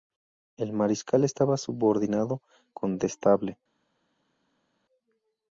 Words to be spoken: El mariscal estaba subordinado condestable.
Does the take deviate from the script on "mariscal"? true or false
false